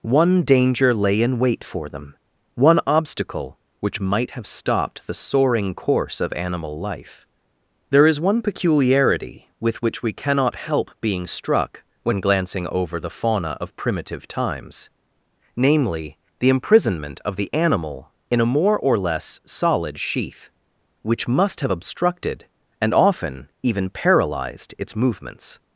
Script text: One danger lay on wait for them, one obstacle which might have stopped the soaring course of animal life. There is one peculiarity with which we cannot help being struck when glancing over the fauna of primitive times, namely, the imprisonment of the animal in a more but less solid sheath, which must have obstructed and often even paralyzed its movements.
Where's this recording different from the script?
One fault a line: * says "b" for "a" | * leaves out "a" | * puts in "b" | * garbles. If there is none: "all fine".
* says "in" for "on"
* says "or" for "but"